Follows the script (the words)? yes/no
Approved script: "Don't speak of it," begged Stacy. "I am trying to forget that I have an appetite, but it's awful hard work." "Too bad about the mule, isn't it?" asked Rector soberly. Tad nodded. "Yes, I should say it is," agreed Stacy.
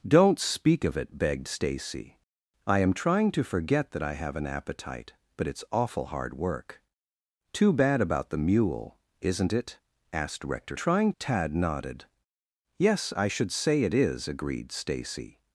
no